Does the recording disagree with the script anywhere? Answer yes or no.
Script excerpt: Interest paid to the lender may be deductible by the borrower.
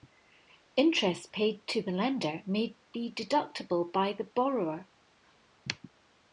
no